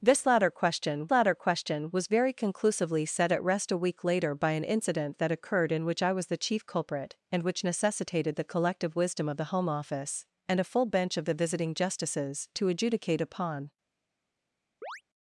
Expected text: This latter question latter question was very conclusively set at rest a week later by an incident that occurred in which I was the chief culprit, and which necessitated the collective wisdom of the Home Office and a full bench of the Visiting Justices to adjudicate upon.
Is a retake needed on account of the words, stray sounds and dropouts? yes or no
yes